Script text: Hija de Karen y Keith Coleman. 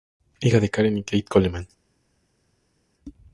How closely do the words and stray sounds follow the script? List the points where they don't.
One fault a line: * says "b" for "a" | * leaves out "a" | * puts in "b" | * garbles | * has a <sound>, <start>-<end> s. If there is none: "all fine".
all fine